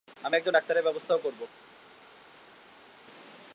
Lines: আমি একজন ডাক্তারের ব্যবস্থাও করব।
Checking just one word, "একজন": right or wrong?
right